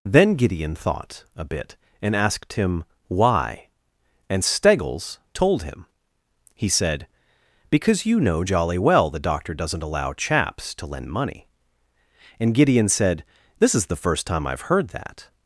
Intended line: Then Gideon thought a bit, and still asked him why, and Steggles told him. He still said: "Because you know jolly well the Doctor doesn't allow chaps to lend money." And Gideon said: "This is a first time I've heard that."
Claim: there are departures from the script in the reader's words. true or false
true